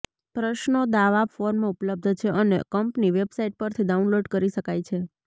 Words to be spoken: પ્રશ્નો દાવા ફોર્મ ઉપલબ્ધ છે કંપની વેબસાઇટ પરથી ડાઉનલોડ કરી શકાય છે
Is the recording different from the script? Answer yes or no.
yes